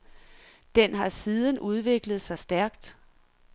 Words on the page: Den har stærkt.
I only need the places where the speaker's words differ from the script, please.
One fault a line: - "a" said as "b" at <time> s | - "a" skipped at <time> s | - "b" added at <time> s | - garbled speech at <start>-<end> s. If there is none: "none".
- "siden udviklet sig" added at 1.1 s